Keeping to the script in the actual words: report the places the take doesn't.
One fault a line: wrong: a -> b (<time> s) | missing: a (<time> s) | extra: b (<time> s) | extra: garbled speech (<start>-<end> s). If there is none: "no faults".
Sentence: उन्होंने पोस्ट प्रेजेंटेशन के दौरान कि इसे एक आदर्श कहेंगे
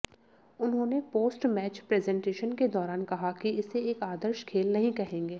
extra: मैच (1.5 s)
extra: कहा (3.0 s)
extra: खेल नहीं (4.4 s)